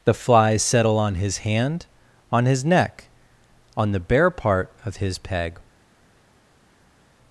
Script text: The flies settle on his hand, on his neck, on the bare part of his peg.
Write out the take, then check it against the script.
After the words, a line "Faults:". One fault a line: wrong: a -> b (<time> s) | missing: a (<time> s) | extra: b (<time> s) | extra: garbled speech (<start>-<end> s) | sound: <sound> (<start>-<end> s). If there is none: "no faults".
The flies settle on his hand, on his neck, on the bare part of his peg.
Faults:
no faults